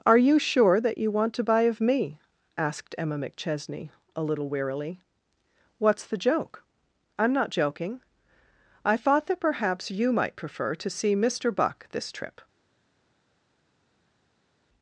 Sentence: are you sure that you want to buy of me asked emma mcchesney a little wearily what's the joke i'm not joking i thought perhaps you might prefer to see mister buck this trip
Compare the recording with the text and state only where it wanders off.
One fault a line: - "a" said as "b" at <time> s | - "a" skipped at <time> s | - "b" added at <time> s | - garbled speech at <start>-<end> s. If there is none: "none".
- "that" added at 9.3 s